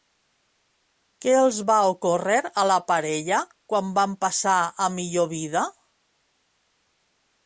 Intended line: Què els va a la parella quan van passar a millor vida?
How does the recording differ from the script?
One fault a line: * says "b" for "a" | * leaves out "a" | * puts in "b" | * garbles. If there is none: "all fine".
* puts in "ocórrer"